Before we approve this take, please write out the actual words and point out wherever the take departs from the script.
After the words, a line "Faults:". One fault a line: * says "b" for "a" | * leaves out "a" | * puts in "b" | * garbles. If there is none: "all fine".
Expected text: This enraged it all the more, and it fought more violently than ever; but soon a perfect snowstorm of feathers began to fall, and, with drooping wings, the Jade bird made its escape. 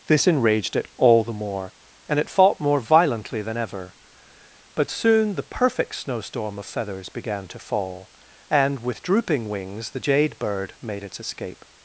This enraged it all the more, and it fought more violently than ever; but soon the perfect snowstorm of feathers began to fall, and, with drooping wings, the Jade bird made its escape.
Faults:
* says "the" for "a"